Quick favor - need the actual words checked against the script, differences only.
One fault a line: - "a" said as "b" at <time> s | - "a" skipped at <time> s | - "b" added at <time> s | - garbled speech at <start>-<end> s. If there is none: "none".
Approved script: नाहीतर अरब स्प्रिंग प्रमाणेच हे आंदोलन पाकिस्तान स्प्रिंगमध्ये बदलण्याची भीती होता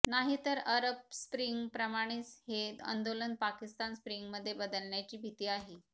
- "होता" said as "आहे" at 5.5 s